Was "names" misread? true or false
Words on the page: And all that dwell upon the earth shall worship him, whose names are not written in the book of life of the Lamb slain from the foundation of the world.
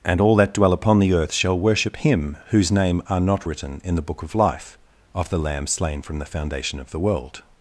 true